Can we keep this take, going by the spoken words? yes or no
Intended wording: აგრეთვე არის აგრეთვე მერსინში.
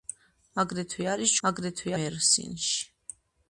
yes